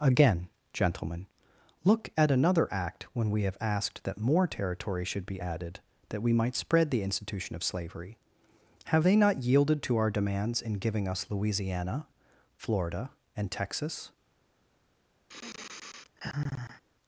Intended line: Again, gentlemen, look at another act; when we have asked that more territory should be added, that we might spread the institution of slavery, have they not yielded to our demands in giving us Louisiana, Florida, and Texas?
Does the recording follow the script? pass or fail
pass